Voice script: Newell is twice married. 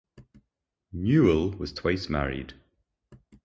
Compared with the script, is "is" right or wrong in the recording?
wrong